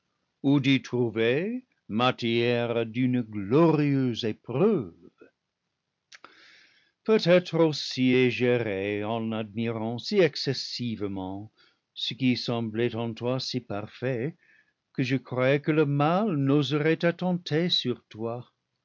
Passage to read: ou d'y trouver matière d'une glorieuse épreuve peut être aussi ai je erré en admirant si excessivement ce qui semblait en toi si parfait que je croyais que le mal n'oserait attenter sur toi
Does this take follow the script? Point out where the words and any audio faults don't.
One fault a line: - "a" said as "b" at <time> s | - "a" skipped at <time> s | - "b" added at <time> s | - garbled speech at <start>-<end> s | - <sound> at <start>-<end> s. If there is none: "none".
none